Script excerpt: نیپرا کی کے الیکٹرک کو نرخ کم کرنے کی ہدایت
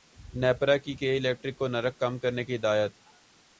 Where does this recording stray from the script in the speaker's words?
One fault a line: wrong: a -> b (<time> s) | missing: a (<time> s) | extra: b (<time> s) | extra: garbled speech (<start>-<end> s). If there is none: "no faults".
no faults